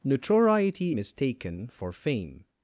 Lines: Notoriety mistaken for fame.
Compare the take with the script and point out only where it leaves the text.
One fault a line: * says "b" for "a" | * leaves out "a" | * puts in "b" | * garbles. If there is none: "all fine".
all fine